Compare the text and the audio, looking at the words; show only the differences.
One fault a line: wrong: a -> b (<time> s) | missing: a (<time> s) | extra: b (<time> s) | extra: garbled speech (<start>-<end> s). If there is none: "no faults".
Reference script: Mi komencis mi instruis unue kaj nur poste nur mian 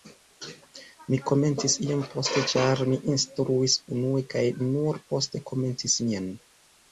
extra: iom poste ĉar (1.9 s)
wrong: nur -> komencis (5.5 s)